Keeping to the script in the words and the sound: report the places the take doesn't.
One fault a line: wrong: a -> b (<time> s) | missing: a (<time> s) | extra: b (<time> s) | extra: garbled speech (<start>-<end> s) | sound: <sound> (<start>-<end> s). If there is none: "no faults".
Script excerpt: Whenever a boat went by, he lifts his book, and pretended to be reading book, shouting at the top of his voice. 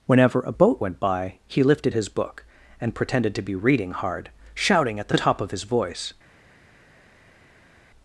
wrong: lifts -> lifted (1.6 s)
wrong: book -> hard (3.9 s)